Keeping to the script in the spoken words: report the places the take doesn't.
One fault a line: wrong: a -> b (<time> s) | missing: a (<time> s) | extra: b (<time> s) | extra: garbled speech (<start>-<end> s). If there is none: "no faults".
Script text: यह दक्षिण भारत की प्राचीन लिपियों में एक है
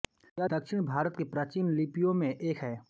no faults